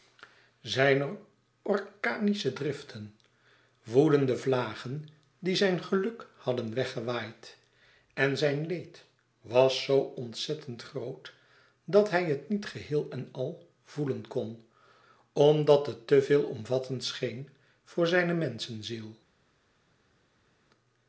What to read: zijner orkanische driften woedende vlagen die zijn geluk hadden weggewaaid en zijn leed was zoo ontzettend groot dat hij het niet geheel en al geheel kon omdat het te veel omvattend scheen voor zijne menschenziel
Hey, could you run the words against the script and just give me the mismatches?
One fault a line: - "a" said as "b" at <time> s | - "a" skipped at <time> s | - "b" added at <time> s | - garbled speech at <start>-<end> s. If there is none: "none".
- "geheel" said as "voelen" at 13.8 s